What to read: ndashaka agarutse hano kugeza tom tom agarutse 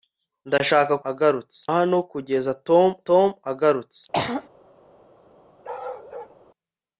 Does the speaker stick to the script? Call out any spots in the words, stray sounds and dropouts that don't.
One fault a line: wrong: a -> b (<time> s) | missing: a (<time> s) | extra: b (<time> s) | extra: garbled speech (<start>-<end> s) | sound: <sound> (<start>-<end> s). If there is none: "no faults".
sound: throat clearing (4.1-4.5 s)
sound: bark (5.6-6.4 s)